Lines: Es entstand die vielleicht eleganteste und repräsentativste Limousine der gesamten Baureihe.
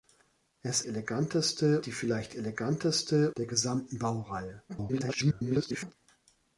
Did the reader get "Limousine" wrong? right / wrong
wrong